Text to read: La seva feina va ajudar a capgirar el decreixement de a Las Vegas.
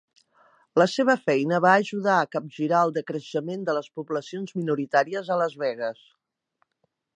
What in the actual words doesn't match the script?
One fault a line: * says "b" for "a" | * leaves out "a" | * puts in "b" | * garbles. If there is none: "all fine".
* puts in "les poblacions minoritàries"